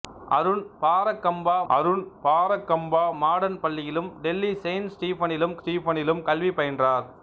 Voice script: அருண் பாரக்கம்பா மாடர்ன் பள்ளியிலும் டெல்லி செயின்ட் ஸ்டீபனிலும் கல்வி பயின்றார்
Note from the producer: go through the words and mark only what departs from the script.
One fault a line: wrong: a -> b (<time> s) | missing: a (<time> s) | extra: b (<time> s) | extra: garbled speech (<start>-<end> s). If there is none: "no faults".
extra: அருண் பாரக்கம்பா (1.7 s)
extra: ஸ்டீபனிலும் (5.6 s)